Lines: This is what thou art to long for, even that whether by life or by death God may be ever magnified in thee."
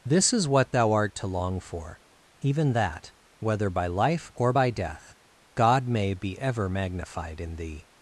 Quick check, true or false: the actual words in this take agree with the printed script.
true